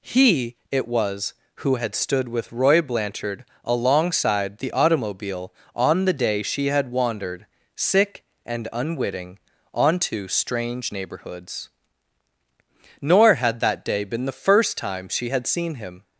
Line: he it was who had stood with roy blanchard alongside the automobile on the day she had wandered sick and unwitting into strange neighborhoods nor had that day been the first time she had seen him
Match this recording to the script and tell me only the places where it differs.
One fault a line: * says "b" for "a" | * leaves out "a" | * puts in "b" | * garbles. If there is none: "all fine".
* says "onto" for "into"